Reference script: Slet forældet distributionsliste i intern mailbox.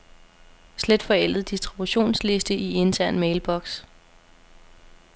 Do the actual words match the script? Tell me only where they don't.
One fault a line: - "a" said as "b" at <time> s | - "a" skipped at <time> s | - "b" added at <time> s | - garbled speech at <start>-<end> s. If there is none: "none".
none